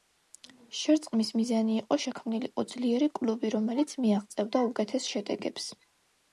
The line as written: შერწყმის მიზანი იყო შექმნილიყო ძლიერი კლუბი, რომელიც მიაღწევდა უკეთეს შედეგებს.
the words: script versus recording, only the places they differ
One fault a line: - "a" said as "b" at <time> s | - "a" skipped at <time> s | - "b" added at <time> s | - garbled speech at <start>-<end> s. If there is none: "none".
none